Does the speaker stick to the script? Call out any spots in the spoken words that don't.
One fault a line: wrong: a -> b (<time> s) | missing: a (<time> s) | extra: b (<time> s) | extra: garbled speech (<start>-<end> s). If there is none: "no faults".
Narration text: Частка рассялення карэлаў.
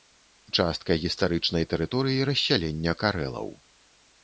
extra: гістарычнай тэрыторыі (1.0 s)